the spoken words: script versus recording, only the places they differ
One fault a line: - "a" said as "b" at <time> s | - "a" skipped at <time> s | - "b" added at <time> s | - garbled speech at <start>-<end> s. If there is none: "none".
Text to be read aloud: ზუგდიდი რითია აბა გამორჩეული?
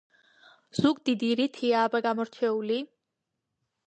none